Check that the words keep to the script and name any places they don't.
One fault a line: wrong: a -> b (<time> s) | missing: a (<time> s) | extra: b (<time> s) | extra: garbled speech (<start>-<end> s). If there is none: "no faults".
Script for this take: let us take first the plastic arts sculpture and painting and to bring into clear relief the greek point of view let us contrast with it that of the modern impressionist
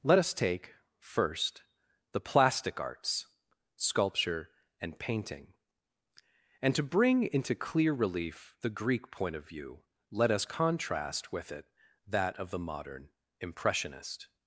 no faults